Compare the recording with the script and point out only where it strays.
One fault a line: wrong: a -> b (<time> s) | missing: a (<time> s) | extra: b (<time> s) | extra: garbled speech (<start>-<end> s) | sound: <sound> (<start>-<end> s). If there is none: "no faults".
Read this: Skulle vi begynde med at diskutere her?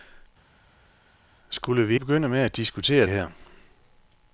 no faults